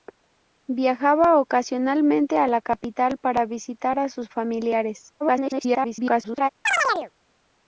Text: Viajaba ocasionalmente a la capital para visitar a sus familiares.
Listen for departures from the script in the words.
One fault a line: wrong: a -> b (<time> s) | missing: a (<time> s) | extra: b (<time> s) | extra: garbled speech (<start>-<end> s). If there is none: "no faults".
extra: garbled speech (5.2-6.5 s)